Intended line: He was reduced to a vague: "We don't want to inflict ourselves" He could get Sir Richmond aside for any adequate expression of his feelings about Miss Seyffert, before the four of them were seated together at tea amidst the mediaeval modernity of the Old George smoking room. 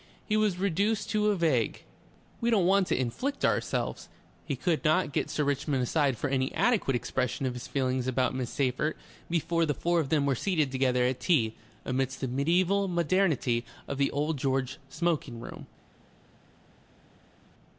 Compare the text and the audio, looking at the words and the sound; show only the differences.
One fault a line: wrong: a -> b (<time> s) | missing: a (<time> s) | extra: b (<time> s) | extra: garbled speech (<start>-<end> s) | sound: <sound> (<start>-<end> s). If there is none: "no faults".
extra: not (4.8 s)